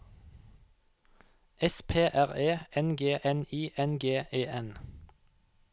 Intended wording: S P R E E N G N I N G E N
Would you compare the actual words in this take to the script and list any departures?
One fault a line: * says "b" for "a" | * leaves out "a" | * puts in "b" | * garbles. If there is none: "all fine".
* leaves out "E"